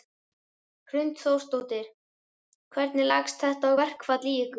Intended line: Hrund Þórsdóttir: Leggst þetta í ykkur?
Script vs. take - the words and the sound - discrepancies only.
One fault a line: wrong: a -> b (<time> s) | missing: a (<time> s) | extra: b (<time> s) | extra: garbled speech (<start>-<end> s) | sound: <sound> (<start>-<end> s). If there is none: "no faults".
extra: Hvernig (2.8 s)
extra: verkfall (3.8 s)